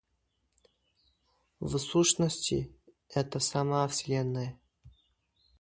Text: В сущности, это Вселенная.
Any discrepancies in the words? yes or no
yes